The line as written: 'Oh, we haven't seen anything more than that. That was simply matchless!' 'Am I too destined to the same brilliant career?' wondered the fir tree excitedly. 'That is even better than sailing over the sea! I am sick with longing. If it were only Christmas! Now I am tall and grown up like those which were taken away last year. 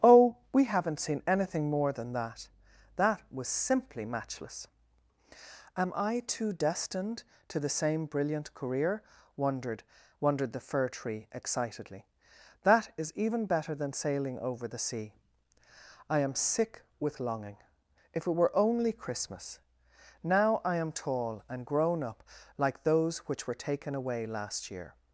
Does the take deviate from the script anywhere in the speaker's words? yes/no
yes